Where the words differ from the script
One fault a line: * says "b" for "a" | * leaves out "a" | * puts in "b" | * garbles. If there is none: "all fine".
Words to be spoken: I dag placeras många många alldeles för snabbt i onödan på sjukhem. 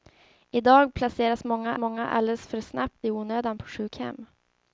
all fine